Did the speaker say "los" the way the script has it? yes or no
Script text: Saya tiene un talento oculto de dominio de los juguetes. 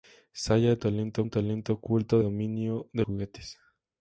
no